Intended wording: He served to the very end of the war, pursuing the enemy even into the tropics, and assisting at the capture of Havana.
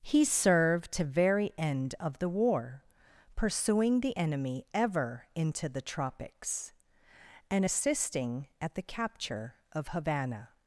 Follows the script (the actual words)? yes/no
no